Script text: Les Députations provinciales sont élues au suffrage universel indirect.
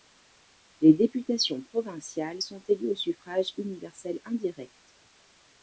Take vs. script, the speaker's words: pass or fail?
pass